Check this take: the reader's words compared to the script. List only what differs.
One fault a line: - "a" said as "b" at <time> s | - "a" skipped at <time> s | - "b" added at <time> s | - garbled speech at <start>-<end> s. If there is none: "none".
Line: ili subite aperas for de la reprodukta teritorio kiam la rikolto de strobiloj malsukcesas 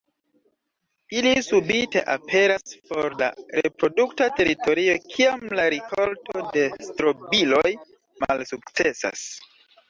- "de" skipped at 3.2 s